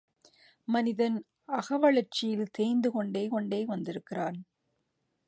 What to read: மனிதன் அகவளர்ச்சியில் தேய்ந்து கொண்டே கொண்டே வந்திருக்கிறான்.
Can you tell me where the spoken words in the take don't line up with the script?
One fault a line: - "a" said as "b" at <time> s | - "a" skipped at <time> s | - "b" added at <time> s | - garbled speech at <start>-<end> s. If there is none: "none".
none